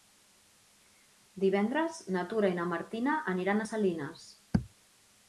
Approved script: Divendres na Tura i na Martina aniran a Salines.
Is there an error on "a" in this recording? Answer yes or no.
no